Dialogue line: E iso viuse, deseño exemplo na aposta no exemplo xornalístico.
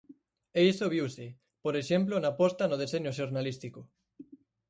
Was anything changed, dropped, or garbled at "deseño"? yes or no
yes